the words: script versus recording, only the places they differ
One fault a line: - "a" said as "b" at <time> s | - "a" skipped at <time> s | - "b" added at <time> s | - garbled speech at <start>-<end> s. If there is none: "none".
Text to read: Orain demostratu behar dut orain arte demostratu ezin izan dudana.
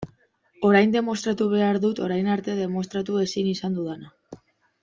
none